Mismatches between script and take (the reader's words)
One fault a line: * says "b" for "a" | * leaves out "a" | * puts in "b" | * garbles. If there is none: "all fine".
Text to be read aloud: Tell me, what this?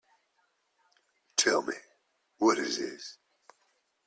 * puts in "is"